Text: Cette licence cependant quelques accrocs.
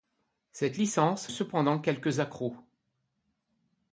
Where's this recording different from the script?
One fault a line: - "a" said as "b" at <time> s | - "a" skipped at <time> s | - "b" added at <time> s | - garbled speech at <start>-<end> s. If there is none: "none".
none